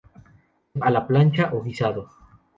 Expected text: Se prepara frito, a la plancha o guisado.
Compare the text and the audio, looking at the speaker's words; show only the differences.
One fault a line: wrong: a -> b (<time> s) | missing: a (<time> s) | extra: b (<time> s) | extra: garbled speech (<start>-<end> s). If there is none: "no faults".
missing: prepara frito (0.8 s)